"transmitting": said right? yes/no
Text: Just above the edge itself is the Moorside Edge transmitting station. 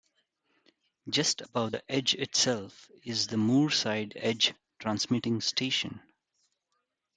yes